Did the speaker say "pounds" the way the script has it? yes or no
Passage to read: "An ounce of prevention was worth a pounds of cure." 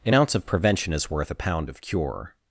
no